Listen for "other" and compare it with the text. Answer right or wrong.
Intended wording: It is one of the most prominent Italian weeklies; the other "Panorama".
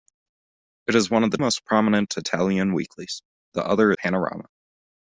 right